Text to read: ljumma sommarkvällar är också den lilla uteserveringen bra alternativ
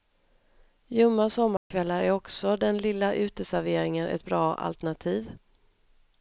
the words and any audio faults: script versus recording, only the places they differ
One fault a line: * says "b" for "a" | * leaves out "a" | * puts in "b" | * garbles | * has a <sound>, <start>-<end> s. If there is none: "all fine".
* has a dropout, 1.6-1.7 s
* puts in "ett"